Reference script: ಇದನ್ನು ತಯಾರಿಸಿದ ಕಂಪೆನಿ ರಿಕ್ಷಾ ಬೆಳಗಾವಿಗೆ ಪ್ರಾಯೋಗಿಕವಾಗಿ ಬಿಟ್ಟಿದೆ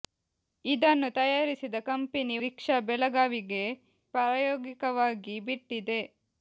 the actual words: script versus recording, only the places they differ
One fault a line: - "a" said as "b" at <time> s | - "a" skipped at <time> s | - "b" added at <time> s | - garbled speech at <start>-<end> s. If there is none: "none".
none